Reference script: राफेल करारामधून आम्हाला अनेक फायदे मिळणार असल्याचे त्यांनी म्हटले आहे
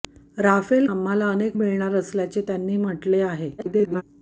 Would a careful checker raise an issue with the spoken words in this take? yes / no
yes